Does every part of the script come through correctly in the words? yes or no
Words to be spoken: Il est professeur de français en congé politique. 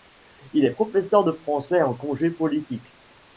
yes